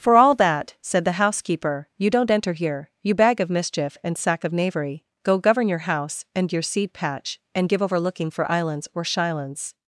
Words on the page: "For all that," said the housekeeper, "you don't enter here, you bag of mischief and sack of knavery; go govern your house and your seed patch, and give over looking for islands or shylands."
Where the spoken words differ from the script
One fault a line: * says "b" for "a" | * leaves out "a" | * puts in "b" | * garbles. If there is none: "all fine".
all fine